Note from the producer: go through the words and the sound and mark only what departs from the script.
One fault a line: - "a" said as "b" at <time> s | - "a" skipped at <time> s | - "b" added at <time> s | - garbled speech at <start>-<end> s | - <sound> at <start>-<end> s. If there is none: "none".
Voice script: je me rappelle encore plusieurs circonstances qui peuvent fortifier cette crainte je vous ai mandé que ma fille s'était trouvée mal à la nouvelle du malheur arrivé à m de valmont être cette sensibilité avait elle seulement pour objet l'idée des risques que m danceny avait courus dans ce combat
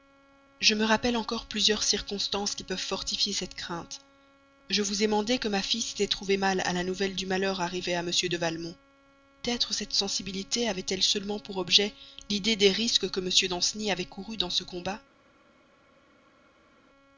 none